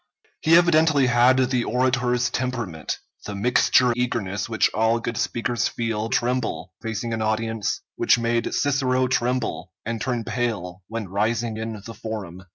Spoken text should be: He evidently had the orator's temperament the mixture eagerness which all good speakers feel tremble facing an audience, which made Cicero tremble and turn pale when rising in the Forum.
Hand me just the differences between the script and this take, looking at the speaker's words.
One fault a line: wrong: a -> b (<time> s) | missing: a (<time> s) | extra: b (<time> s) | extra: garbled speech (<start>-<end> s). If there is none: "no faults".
no faults